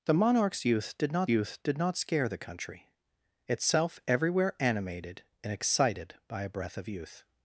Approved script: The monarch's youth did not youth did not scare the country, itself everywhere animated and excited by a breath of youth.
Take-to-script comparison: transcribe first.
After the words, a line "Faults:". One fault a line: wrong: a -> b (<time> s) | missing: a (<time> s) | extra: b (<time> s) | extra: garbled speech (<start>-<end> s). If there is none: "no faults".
The monarch's youth did not youth did not scare the country, itself everywhere animated and excited by a breath of youth.
Faults:
no faults